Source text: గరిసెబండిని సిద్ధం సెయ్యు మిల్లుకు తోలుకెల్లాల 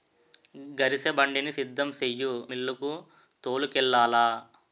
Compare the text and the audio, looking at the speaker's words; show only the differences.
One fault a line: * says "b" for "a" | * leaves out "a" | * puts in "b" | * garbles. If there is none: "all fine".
all fine